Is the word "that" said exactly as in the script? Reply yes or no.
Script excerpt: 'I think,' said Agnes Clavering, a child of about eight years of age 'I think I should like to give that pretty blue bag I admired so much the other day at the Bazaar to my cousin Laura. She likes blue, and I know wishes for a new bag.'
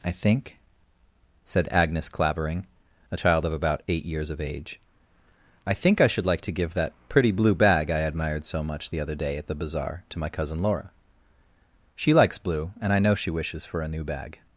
yes